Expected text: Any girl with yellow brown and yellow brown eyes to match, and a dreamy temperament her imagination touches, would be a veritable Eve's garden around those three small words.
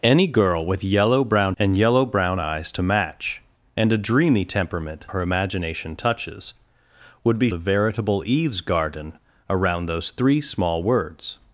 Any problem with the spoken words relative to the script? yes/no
no